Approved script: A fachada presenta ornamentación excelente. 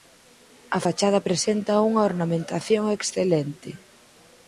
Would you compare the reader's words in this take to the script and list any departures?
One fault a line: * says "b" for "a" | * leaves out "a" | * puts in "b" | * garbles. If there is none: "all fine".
* puts in "unha"